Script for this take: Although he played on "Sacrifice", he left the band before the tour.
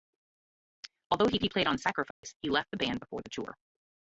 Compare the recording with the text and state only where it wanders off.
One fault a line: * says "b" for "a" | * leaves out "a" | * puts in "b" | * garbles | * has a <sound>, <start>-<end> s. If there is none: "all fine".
* puts in "he"
* has a dropout, 2.1-2.2 s